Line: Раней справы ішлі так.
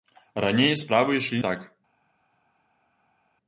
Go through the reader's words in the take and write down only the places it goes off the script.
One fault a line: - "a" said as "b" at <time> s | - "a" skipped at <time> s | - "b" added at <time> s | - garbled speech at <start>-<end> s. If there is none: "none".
none